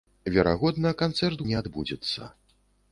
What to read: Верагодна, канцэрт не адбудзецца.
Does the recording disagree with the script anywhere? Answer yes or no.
no